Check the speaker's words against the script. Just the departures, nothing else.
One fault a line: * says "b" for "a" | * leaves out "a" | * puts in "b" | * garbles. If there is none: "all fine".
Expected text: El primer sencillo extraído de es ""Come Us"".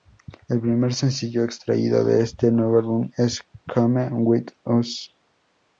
* puts in "este nuevo álbum"
* puts in "With"